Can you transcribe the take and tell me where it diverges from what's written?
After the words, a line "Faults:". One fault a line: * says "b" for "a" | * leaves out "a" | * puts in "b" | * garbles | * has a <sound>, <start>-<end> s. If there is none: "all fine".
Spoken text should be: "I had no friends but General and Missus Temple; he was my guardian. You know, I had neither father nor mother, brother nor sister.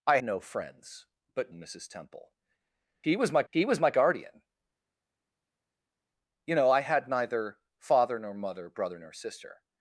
"I no friends but And Missus Temple; he was my he was my guardian. You know, I had neither father nor mother, brother nor sister.
Faults:
* leaves out "had"
* leaves out "General"
* puts in "he was my"